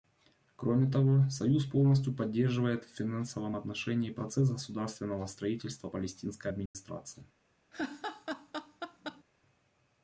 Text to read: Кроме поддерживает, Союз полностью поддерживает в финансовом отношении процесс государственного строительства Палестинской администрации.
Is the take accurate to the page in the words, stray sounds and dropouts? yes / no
no